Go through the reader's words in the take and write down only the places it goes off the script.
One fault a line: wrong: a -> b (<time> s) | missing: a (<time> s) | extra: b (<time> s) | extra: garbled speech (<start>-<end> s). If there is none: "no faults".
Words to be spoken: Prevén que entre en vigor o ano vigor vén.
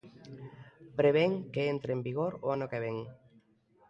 wrong: vigor -> que (2.7 s)